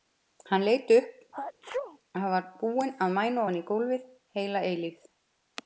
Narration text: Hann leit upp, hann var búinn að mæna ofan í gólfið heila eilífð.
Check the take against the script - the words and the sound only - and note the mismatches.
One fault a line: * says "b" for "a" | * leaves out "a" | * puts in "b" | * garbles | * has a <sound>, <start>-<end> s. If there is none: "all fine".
* has a sneeze, 1.3-2.0 s